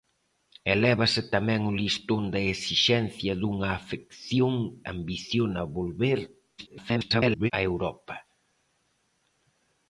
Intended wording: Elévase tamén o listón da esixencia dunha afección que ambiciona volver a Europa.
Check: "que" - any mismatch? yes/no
yes